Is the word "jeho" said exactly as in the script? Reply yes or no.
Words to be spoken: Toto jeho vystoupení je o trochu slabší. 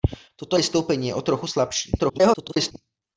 no